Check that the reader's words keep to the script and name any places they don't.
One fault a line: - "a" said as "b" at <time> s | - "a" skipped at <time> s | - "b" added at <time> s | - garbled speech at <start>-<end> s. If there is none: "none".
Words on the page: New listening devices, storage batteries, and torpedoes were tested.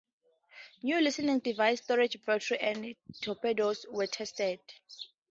none